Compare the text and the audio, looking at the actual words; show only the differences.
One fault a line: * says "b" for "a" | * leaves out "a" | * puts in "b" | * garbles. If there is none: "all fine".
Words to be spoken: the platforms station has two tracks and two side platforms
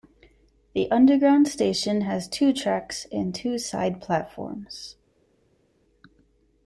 * says "underground" for "platforms"